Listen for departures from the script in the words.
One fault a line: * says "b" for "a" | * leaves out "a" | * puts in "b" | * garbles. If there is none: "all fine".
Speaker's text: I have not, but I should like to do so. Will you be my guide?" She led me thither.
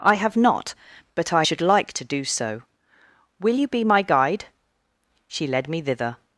all fine